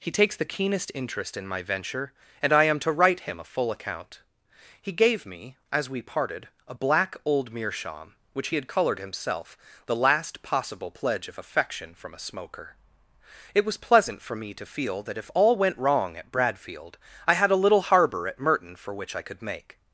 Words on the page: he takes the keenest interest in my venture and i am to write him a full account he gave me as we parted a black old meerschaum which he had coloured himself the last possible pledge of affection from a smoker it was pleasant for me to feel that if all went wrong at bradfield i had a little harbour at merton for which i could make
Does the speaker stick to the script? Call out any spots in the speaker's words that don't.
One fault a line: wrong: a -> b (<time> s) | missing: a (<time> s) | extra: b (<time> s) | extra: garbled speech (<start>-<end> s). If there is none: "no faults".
no faults